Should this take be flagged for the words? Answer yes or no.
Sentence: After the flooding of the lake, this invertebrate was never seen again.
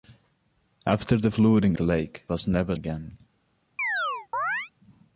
yes